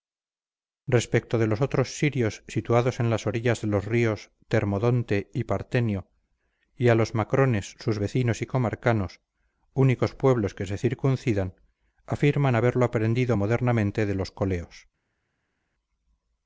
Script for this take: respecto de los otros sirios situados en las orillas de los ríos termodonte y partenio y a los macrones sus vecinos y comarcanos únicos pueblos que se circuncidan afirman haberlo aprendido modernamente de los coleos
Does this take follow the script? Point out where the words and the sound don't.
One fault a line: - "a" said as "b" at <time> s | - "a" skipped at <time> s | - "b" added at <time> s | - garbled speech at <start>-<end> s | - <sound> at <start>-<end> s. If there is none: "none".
none